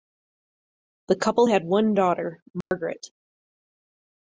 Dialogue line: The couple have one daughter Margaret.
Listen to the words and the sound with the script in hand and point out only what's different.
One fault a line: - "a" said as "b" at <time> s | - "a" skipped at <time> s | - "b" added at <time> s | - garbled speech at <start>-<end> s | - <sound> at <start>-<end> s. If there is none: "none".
- "have" said as "had" at 1.5 s
- dropout at 2.6-2.7 s